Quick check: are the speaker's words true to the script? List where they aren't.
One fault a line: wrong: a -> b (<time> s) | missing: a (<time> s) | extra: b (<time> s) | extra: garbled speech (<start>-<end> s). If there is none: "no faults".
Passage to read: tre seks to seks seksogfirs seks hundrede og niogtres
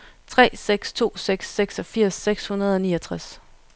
no faults